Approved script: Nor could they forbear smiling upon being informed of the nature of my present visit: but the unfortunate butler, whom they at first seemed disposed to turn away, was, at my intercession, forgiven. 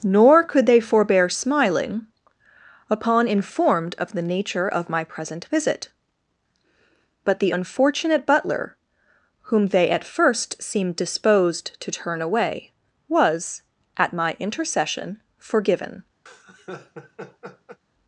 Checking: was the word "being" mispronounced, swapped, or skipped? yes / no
yes